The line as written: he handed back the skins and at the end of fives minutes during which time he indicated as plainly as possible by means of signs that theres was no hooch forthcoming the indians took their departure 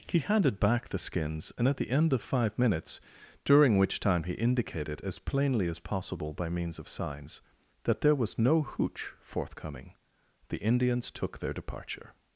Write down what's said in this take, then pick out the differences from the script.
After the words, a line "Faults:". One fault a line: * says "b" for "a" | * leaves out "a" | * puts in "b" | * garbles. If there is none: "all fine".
he handed back the skins and at the end of five minutes during which time he indicated as plainly as possible by means of signs that there was no hooch forthcoming the indians took their departure
Faults:
* says "five" for "fives"
* says "there" for "theres"